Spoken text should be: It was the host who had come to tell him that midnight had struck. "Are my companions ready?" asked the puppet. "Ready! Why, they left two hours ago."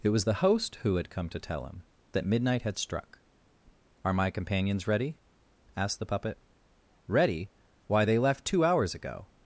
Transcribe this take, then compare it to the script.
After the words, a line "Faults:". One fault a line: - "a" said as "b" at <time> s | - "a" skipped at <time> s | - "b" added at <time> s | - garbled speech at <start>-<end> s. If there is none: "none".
It was the host who had come to tell him that midnight had struck. "Are my companions ready?" asked the puppet. "Ready! Why, they left two hours ago."
Faults:
none